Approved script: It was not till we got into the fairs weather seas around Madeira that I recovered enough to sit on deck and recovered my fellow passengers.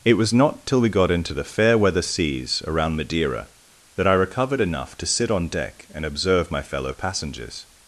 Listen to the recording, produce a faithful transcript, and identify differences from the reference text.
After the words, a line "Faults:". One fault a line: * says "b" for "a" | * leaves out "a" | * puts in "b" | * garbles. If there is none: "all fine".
It was not till we got into the fair weather seas around Madeira that I recovered enough to sit on deck and observe my fellow passengers.
Faults:
* says "fair" for "fairs"
* says "observe" for "recovered"